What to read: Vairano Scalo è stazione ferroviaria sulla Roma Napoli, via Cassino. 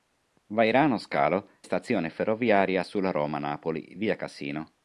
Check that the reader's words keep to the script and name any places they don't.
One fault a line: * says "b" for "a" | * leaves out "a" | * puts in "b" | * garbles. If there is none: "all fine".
* leaves out "è"